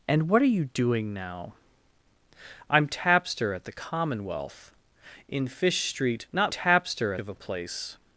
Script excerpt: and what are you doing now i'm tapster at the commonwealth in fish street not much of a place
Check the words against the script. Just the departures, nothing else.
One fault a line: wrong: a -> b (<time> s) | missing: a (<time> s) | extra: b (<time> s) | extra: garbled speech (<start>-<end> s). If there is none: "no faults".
wrong: much -> tapster (6.5 s)